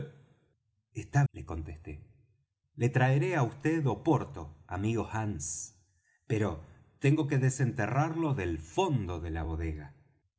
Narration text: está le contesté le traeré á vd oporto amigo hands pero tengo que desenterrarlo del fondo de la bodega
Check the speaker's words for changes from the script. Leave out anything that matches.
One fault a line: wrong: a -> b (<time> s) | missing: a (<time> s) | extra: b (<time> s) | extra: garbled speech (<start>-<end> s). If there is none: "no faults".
no faults